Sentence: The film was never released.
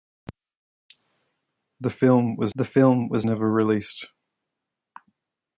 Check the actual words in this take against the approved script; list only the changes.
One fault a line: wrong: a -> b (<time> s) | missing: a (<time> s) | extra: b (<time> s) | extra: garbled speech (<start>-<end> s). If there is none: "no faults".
extra: the film was (2.5 s)